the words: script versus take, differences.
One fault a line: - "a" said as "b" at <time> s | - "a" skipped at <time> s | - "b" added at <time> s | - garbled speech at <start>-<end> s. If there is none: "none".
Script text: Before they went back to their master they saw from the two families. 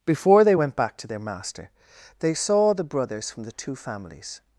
- "the brothers" added at 2.7 s